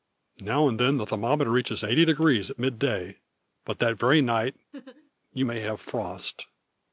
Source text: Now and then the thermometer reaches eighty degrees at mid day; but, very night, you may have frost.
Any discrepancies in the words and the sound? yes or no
yes